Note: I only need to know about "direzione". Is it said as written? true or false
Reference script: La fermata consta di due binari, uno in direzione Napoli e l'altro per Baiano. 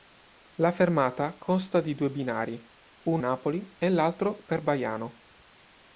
false